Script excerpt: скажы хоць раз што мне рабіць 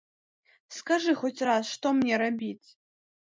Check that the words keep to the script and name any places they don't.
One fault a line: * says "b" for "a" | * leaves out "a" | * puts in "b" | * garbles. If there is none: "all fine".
all fine